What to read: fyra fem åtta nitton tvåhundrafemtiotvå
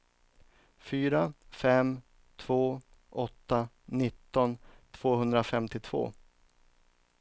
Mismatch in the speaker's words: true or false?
true